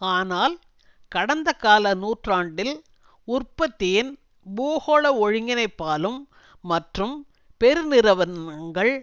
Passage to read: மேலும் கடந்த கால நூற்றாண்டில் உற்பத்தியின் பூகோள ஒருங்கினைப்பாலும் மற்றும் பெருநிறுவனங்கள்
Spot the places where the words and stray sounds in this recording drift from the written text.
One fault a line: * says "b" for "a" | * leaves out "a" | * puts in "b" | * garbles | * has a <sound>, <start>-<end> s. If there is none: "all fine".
* says "ஆனால்" for "மேலும்"